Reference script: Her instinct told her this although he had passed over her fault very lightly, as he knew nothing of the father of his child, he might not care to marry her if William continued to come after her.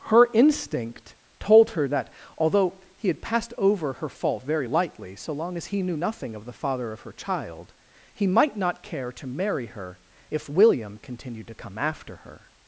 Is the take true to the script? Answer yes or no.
no